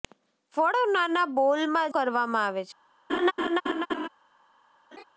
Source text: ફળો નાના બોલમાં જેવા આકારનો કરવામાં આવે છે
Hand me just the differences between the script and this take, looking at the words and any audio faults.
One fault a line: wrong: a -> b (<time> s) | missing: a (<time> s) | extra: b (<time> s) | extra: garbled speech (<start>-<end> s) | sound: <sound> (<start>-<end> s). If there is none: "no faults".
missing: જેવા આકારનો (1.9 s)
sound: laugh (3.1-4.1 s)
sound: laugh (4.9-5.0 s)